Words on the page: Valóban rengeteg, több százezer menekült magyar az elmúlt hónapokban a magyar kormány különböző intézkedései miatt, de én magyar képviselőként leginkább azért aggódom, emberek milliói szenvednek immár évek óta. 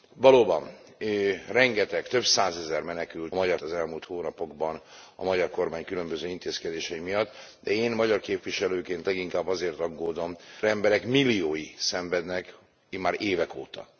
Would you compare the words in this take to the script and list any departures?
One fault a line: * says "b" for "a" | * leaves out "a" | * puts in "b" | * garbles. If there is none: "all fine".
all fine